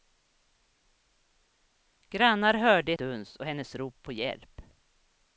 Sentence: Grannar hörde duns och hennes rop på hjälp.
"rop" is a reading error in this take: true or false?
false